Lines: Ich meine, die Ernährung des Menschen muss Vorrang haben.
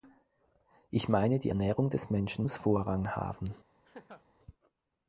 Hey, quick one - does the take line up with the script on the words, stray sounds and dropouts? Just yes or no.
no